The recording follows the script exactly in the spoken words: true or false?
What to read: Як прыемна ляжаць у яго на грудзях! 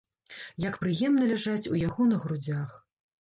true